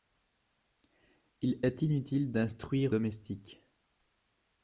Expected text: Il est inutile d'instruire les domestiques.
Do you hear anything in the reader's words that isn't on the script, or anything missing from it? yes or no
yes